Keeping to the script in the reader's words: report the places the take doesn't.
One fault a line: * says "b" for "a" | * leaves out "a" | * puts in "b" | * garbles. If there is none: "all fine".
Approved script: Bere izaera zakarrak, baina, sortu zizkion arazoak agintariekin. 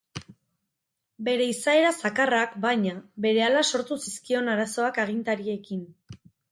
* puts in "berehala"